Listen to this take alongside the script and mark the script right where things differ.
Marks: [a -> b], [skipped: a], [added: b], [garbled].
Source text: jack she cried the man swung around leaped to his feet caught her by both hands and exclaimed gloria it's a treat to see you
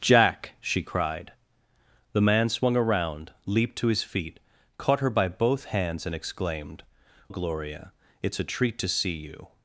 jack she cried the man swung around leaped to his feet caught her by both hands and exclaimed gloria it's a treat to see you